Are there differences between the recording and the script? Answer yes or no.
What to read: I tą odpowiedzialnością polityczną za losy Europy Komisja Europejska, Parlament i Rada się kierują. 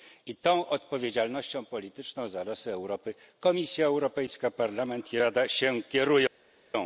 no